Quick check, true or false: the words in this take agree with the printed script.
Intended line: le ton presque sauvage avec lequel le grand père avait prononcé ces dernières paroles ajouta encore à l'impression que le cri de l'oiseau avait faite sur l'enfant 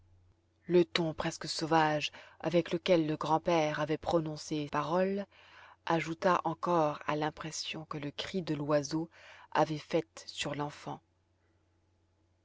false